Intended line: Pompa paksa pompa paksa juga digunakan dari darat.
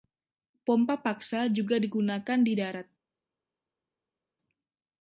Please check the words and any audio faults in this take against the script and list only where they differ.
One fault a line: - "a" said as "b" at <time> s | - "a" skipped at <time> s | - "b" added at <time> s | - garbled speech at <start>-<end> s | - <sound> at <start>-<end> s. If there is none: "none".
- "pompa paksa" skipped at 1.4 s
- "dari" said as "di" at 2.4 s